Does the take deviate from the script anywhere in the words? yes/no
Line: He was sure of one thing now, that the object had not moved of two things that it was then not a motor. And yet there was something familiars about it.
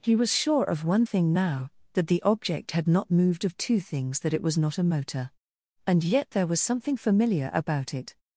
yes